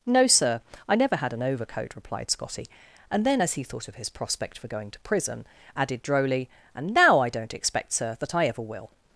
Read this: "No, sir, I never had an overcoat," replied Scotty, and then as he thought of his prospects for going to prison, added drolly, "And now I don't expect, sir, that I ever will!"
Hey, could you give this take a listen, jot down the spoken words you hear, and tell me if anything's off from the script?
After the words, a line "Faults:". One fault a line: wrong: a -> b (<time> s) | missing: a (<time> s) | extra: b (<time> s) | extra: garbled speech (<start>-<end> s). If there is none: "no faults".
"No, sir, I never had an overcoat," replied Scotty, and then as he thought of his prospect for going to prison, added drolly, "And now I don't expect, sir, that I ever will!"
Faults:
wrong: prospects -> prospect (4.1 s)